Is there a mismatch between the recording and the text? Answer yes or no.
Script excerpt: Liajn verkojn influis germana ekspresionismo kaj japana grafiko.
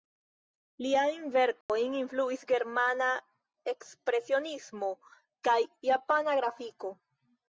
no